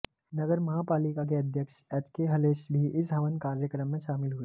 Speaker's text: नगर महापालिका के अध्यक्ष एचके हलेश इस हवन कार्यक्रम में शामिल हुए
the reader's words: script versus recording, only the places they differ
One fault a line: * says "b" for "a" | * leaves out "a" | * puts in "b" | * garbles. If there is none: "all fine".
* puts in "भी"